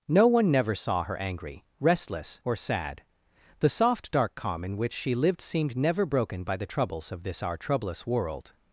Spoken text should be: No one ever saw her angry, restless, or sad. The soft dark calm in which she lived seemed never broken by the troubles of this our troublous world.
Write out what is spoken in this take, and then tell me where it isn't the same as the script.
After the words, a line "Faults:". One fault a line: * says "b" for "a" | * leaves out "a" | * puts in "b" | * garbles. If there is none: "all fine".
No one never saw her angry, restless, or sad. The soft dark calm in which she lived seemed never broken by the troubles of this our troublous world.
Faults:
* says "never" for "ever"